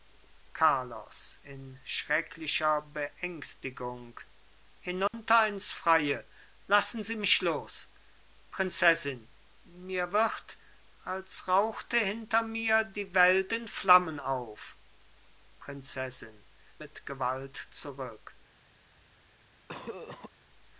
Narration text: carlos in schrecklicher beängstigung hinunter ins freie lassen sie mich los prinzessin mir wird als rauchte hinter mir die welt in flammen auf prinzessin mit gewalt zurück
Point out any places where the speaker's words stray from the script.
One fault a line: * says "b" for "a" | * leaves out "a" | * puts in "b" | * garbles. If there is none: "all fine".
all fine